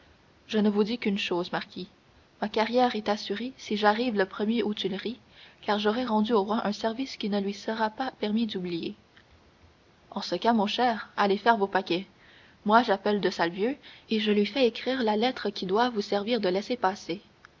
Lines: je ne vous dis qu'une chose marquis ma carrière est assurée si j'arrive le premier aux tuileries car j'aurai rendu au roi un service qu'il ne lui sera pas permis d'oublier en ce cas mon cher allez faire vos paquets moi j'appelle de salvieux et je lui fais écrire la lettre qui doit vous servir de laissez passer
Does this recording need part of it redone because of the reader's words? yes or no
no